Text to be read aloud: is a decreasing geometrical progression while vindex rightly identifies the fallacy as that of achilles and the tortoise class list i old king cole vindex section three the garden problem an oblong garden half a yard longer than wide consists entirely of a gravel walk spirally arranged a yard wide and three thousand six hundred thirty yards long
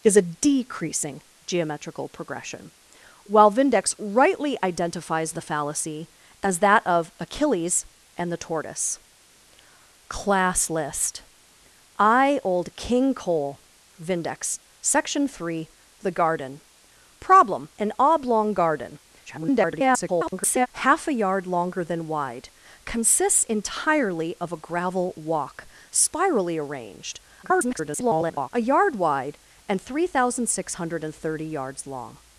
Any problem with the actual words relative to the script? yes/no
yes